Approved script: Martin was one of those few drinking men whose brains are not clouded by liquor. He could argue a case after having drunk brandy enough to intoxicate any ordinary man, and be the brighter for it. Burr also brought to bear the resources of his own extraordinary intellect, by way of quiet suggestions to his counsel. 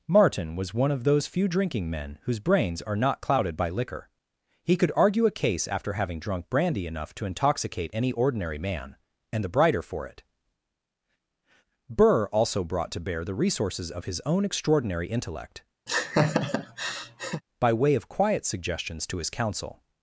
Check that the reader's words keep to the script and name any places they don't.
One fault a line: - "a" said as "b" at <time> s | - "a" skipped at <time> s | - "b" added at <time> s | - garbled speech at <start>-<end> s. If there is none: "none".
- "be" skipped at 9.4 s